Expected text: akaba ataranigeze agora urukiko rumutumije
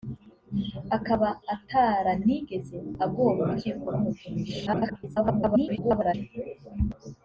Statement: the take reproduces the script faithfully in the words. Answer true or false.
false